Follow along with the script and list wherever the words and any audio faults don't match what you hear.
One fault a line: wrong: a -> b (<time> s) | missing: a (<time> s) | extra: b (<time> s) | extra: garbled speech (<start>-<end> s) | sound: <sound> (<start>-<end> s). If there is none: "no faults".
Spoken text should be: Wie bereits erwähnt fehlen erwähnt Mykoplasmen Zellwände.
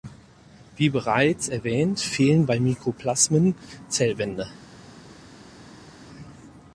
wrong: erwähnt -> bei (2.5 s)